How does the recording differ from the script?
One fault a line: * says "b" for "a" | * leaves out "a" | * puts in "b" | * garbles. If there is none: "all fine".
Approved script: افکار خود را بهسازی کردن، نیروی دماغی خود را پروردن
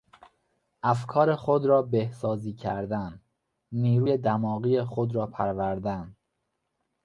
all fine